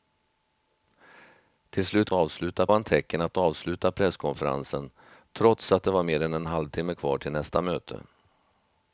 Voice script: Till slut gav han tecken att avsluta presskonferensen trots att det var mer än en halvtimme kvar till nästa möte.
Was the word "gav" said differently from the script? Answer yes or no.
yes